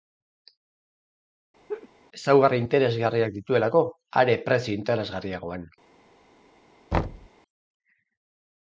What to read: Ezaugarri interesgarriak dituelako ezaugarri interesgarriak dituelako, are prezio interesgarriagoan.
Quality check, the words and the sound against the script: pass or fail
fail